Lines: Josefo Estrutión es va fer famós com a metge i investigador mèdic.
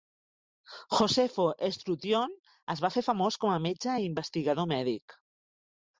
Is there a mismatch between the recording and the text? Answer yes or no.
no